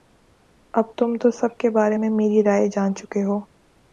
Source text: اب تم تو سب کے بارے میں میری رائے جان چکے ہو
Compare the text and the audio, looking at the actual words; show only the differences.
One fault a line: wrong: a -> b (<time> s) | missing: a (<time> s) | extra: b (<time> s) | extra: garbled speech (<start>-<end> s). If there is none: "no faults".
no faults